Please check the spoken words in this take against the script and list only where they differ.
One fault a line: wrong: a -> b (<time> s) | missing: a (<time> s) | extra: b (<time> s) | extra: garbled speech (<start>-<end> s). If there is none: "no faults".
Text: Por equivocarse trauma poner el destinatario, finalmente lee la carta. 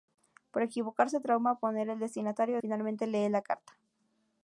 no faults